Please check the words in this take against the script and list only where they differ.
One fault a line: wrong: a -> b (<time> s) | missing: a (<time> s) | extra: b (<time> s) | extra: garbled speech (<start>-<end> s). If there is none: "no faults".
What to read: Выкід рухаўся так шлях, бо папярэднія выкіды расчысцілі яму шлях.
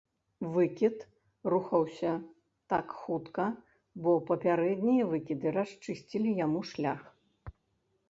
wrong: шлях -> хутка (3.0 s)